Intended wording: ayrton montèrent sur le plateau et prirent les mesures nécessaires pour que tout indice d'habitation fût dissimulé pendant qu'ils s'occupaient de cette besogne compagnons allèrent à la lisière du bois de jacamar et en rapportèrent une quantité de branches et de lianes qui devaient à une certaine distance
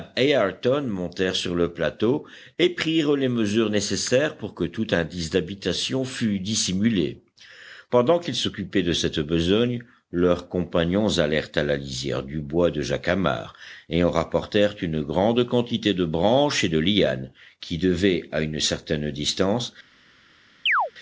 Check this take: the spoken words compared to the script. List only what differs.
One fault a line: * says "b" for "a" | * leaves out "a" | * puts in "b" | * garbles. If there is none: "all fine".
* puts in "leurs"
* puts in "grande"